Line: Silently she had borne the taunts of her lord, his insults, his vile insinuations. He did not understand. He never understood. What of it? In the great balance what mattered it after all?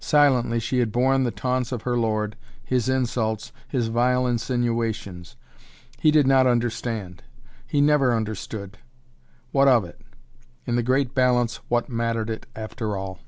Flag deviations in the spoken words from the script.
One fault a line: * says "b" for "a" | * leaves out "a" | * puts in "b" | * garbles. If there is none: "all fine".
all fine